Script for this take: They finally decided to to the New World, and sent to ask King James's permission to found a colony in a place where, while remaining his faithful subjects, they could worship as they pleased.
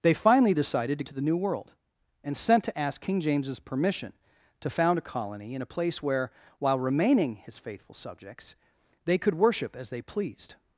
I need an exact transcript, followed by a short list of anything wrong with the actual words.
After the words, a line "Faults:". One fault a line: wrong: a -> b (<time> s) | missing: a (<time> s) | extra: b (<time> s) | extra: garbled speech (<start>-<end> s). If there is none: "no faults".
They finally decided to to the New World, and sent to ask King James's permission to found a colony in a place where, while remaining his faithful subjects, they could worship as they pleased.
Faults:
no faults